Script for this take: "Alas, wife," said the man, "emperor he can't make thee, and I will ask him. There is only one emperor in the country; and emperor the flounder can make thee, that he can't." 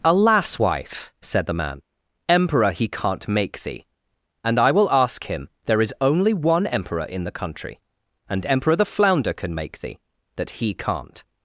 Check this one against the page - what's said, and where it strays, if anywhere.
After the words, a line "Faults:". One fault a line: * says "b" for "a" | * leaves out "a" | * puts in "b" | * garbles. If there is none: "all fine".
"Alas, wife," said the man, "emperor he can't make thee, and I will ask him. There is only one emperor in the country; and emperor the flounder can make thee, that he can't."
Faults:
all fine